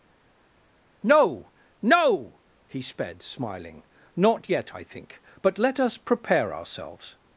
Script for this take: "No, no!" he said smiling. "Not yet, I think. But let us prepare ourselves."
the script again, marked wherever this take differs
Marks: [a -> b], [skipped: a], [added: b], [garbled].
"No, no!" he [said -> sped] smiling. "Not yet, I think. But let us prepare ourselves."